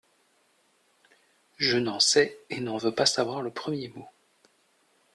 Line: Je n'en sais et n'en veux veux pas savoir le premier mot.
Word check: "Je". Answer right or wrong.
right